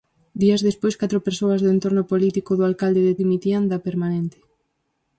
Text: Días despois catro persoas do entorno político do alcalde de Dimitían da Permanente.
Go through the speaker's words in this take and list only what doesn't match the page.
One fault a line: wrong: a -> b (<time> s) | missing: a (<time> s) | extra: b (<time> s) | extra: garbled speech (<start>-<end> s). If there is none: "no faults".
no faults